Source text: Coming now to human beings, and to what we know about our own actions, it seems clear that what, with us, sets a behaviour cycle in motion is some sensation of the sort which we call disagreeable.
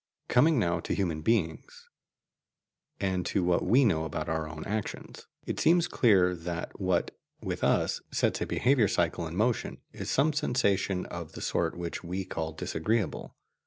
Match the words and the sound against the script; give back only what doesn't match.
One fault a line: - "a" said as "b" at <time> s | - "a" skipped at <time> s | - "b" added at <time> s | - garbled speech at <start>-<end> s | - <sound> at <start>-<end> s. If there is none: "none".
none